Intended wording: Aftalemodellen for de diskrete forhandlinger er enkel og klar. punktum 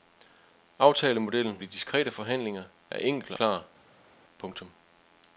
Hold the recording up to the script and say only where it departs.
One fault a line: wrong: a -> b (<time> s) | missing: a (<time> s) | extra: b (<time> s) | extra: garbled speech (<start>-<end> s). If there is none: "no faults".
missing: for (1.6 s)
missing: og (3.3 s)